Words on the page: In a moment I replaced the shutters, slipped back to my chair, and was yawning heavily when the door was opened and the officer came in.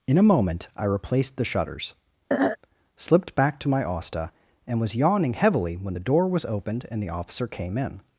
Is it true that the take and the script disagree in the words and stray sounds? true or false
true